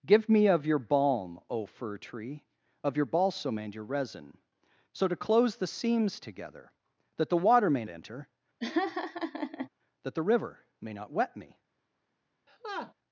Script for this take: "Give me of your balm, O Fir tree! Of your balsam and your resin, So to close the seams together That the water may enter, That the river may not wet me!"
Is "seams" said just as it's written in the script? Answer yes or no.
yes